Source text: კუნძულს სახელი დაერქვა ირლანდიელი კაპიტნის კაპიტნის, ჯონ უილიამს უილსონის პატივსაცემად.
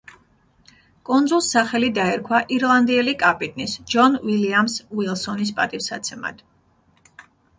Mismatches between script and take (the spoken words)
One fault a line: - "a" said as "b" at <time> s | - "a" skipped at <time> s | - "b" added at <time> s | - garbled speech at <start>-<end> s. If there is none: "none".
- "კაპიტნის" skipped at 3.8 s